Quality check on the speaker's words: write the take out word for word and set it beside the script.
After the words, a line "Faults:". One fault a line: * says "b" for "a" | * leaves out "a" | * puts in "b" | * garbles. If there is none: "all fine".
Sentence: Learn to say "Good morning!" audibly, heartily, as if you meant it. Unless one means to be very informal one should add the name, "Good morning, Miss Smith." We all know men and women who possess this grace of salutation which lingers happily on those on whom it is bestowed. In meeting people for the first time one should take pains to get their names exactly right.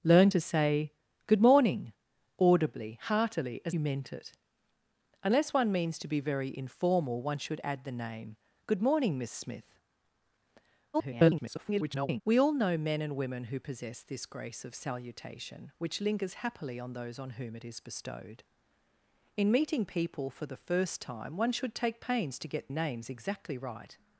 Learn to say "Good morning!" audibly, heartily, as you meant it. Unless one means to be very informal one should add the name, "Good morning, Miss Smith." [garbled] We all know men and women who possess this grace of salutation which lingers happily on those on whom it is bestowed. In meeting people for the first time one should take pains to get names exactly right.
Faults:
* leaves out "if"
* garbles
* leaves out "their"